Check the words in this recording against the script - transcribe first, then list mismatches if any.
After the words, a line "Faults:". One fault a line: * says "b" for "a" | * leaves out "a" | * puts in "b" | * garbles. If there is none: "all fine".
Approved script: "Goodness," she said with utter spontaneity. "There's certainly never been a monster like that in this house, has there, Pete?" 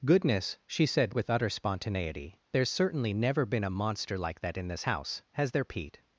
"Goodness," she said with utter spontaneity. "There's certainly never been a monster like that in this house, has there, Pete?"
Faults:
all fine